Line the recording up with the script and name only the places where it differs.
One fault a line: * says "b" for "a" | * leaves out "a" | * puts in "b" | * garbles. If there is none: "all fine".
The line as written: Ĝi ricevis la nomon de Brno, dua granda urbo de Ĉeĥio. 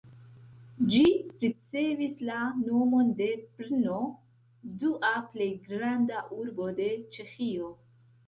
* puts in "plej"